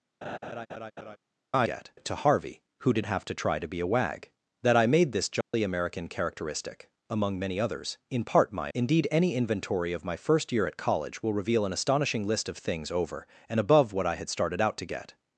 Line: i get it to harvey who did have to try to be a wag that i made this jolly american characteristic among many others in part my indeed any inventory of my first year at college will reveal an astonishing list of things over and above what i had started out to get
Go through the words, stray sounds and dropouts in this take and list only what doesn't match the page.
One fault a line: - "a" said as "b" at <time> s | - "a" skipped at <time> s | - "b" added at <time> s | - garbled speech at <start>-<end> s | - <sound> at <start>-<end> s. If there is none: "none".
- laugh at 0.2-1.2 s
- dropout at 5.4-5.5 s